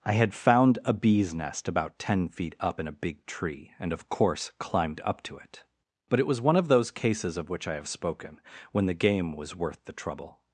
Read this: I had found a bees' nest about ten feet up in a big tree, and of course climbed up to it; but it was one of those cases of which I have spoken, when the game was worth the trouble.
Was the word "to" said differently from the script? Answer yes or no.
no